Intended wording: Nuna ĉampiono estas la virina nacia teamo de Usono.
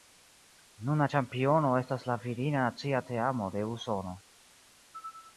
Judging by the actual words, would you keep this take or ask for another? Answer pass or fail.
pass